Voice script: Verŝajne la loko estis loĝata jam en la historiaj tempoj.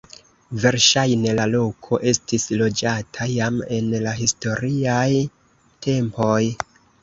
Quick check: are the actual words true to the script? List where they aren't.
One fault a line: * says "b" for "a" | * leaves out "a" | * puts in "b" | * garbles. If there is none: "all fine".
all fine